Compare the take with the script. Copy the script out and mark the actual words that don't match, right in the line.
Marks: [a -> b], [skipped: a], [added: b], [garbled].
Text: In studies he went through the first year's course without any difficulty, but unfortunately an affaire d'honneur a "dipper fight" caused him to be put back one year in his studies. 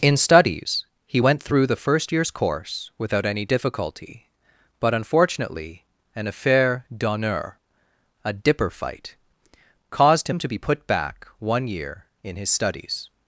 In studies he went through the first year's course without any difficulty, but unfortunately an affaire d'honneur a "dipper fight" caused him to be put back one year in his studies.